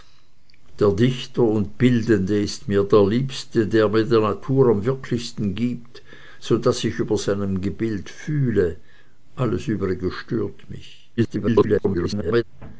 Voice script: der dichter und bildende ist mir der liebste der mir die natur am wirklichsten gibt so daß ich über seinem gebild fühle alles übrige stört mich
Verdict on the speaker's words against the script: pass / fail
fail